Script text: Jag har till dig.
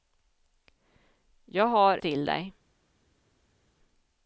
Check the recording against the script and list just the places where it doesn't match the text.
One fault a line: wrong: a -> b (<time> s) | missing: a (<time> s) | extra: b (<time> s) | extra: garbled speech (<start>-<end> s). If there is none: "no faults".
no faults